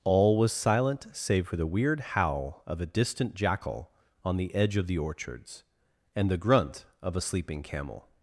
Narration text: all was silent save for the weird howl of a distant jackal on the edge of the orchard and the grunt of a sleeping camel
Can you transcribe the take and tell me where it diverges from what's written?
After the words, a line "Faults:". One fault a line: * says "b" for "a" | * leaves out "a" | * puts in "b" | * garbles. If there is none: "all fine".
all was silent save for the weird howl of a distant jackal on the edge of the orchards and the grunt of a sleeping camel
Faults:
* says "orchards" for "orchard"